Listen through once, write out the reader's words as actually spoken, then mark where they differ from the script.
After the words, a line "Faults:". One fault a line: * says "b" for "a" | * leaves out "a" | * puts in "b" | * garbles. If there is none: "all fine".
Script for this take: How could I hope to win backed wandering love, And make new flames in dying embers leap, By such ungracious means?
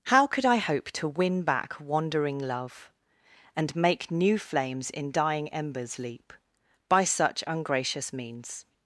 How could I hope to win back wandering love, And make new flames in dying embers leap, By such ungracious means?
Faults:
* says "back" for "backed"